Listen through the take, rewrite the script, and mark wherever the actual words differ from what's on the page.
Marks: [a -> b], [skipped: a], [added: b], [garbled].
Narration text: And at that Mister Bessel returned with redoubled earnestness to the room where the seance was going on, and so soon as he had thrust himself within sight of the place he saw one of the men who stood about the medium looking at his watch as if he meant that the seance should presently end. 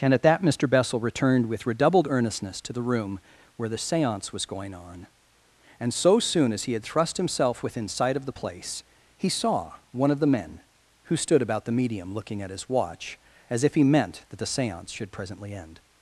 And at that Mister Bessel returned with redoubled earnestness to the room where the seance was going on, and so soon as he had thrust himself within sight of the place he saw one of the men who stood about the medium looking at his watch as if he meant that the seance should presently end.